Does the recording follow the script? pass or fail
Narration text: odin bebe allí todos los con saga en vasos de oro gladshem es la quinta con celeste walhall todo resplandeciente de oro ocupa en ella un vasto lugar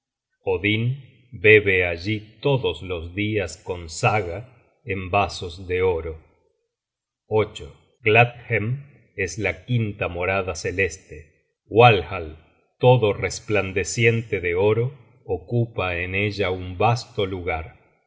fail